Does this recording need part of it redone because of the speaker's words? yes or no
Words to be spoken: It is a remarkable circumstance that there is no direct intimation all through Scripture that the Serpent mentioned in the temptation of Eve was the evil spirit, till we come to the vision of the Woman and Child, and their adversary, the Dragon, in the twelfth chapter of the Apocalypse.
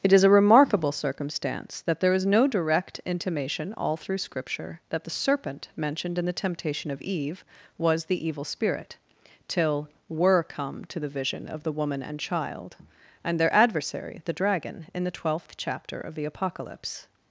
yes